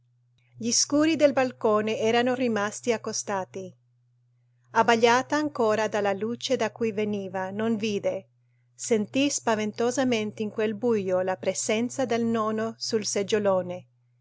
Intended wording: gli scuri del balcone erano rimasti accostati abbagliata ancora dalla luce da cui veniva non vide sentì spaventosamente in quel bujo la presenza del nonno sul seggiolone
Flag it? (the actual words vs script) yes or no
no